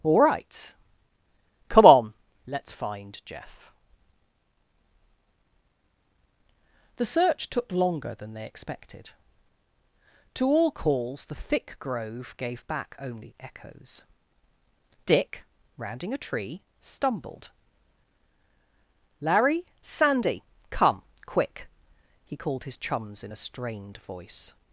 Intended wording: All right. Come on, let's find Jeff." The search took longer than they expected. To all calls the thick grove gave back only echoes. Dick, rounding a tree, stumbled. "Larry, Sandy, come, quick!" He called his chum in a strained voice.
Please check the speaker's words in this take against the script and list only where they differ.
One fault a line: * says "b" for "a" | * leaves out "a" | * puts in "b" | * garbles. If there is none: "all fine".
* says "chums" for "chum"